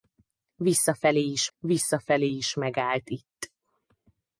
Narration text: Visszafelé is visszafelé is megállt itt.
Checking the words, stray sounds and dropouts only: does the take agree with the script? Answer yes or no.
yes